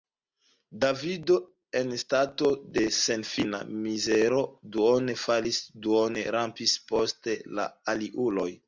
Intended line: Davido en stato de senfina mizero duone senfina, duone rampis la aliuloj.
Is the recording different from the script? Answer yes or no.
yes